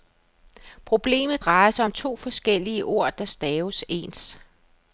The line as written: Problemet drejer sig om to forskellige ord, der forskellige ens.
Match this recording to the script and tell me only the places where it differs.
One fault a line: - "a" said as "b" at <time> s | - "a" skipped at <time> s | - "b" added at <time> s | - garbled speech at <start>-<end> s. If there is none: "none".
- "forskellige" said as "staves" at 3.2 s